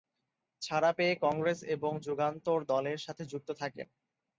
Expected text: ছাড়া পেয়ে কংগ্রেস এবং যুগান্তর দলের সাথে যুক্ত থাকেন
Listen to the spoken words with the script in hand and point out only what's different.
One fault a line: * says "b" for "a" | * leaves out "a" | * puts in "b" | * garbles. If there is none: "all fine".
all fine